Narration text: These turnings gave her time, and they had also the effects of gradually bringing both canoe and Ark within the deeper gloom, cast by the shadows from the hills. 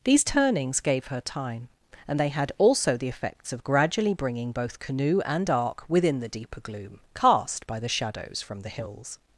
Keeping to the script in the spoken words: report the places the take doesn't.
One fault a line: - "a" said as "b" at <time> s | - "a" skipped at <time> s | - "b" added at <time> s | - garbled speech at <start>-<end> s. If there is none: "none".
none